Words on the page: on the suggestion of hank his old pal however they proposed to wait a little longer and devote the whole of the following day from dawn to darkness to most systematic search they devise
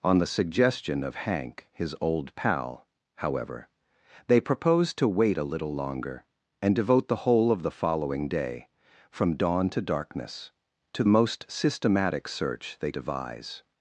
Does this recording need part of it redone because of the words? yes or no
no